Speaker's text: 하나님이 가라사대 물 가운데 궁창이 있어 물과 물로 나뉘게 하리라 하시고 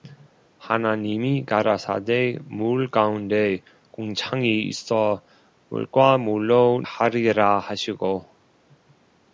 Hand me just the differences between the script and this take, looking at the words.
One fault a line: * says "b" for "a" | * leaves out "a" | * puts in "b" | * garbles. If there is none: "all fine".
* leaves out "나뉘게"